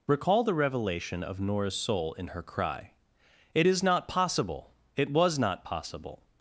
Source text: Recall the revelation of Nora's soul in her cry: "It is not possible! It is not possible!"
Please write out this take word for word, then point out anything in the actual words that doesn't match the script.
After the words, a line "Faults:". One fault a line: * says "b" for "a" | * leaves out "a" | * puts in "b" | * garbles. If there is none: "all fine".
Recall the revelation of Nora's soul in her cry: "It is not possible! It was not possible!"
Faults:
* says "was" for "is"